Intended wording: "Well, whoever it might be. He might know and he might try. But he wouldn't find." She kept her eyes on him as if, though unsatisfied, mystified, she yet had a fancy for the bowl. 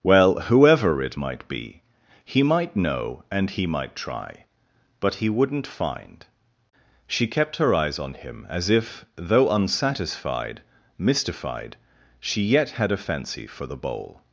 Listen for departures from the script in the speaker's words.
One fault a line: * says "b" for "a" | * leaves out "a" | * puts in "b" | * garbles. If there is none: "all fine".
all fine